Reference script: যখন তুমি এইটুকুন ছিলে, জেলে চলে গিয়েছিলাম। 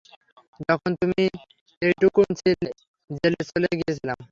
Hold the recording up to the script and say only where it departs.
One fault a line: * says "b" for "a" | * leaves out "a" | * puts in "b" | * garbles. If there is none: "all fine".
all fine